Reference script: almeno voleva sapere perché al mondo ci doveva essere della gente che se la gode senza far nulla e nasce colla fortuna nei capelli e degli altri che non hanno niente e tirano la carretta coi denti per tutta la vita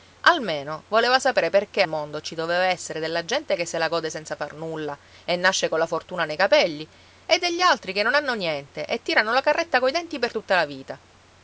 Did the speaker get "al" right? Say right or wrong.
wrong